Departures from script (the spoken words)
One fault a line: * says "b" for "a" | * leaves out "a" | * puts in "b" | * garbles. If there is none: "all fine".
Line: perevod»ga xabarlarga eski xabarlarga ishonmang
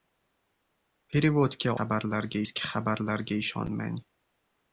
all fine